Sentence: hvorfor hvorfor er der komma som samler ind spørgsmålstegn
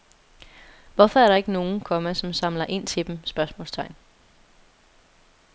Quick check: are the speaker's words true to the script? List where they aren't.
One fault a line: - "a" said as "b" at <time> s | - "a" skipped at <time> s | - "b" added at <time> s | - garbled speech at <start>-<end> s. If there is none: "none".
- "hvorfor" skipped at 1.2 s
- "ikke nogen" added at 1.3 s
- "til dem" added at 2.9 s